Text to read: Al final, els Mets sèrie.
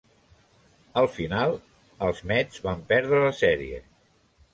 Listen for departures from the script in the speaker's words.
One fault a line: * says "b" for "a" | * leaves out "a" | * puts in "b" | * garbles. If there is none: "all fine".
* puts in "van perdre la"